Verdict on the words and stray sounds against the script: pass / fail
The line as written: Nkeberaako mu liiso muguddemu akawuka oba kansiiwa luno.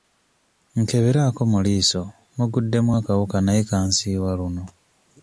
fail